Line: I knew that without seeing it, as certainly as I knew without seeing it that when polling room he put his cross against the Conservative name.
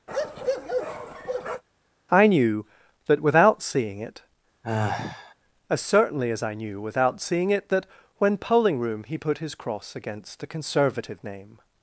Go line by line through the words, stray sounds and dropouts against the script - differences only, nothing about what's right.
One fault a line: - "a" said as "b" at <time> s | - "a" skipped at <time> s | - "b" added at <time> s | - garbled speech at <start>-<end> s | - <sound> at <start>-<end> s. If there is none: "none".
- bark at 0.1-1.6 s
- sigh at 4.6-5.3 s